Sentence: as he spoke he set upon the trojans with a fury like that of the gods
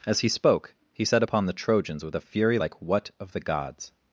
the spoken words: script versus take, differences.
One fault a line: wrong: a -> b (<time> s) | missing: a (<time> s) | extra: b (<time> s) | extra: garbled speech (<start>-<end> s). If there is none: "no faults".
wrong: that -> what (2.8 s)